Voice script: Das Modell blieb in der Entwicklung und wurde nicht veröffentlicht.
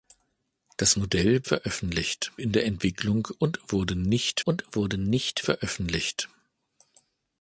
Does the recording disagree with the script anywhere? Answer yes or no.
yes